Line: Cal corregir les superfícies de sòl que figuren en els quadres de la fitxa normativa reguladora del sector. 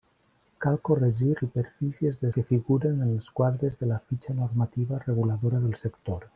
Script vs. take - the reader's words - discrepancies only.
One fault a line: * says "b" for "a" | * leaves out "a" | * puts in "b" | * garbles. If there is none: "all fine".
* leaves out "les"
* leaves out "sòl"